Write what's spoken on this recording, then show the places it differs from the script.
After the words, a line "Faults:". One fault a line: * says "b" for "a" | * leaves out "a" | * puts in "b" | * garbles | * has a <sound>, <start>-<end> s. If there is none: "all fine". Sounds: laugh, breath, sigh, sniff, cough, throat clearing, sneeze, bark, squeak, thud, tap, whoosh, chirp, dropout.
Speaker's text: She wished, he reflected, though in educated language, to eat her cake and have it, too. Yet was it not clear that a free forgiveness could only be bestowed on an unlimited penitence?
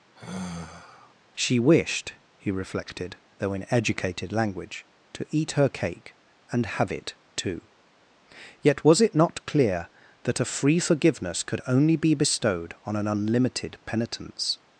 She wished, he reflected, though in educated language, to eat her cake and have it, too. Yet was it not clear that a free forgiveness could only be bestowed on an unlimited penitence?
Faults:
* has a sigh, 0.2-1.1 s